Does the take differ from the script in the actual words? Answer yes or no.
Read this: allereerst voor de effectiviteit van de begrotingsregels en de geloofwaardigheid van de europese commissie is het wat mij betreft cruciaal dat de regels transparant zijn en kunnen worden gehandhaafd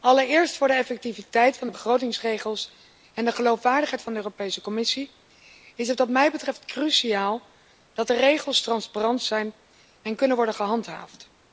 no